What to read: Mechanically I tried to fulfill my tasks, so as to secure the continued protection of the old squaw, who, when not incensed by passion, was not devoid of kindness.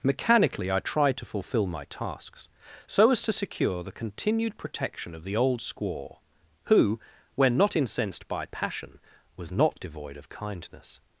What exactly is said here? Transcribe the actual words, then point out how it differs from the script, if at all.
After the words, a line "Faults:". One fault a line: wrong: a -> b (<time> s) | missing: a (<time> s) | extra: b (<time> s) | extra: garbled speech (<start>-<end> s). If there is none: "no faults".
Mechanically I tried to fulfill my tasks, so as to secure the continued protection of the old squaw, who, when not incensed by passion, was not devoid of kindness.
Faults:
no faults